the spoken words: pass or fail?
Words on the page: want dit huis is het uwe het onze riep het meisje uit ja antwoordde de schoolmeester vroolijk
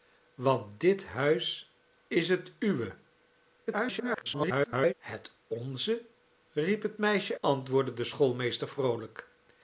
fail